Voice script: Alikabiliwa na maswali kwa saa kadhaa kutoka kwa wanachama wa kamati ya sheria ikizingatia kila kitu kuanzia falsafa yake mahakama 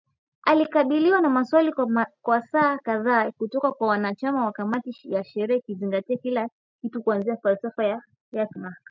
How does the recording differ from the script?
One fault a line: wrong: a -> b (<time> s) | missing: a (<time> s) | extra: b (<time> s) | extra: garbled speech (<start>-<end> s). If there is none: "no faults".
no faults